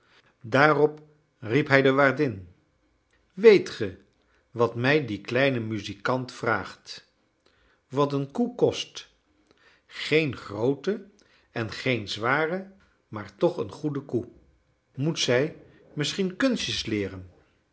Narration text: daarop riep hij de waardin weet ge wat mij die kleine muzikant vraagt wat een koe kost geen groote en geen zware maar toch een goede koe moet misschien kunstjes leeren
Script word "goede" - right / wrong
right